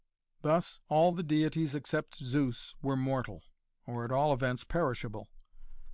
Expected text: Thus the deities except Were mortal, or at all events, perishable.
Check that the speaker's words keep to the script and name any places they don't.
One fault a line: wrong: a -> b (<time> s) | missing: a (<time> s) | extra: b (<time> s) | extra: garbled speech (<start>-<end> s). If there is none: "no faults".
extra: all (0.9 s)
extra: Zeus (2.2 s)